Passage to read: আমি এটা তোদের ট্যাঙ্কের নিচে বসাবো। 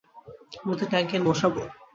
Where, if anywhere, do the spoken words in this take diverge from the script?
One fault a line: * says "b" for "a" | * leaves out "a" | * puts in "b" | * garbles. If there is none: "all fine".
* leaves out "এটা"
* leaves out "নিচে"